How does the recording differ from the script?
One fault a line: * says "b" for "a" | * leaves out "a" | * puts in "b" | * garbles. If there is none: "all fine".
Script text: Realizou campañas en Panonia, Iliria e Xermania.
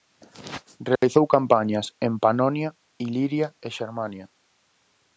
all fine